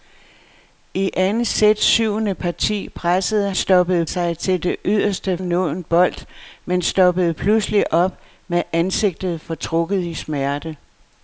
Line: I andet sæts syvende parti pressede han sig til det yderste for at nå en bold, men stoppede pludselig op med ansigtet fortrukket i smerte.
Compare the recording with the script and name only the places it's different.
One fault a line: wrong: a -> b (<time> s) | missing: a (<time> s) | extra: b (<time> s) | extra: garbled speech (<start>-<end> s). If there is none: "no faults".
wrong: han -> stoppede (3.5 s)
missing: for at (5.4 s)